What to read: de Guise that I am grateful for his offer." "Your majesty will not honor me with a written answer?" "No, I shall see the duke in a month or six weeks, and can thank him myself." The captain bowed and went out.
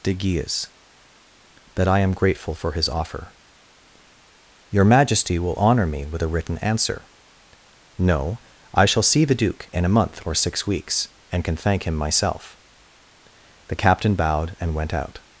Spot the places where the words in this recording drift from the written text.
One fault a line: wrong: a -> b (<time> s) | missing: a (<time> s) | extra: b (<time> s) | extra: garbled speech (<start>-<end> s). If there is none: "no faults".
missing: not (5.5 s)